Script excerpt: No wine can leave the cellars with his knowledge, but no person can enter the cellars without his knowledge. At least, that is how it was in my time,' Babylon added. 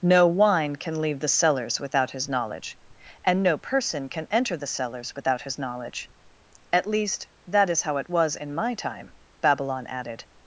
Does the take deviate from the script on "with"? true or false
true